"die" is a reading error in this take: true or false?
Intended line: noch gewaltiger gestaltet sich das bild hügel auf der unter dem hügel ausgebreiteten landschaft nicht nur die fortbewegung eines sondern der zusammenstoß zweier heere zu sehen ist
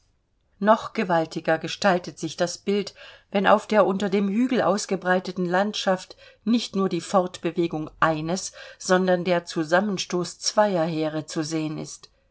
false